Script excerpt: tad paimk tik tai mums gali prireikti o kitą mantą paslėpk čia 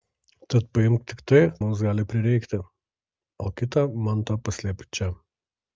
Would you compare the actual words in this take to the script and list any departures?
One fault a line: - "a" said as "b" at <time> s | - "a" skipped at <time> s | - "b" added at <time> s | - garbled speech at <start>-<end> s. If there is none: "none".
none